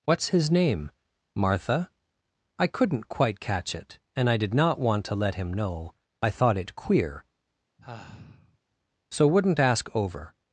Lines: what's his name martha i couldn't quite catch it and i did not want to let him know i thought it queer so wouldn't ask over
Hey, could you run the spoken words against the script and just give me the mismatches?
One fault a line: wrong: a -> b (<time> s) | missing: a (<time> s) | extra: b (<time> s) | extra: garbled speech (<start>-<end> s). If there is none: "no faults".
no faults